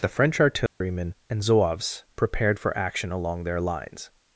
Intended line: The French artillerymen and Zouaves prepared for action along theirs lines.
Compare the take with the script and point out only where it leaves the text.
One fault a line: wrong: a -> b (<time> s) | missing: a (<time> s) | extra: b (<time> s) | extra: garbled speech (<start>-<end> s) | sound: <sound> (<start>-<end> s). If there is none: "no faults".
sound: dropout (0.7-0.8 s)
wrong: theirs -> their (3.4 s)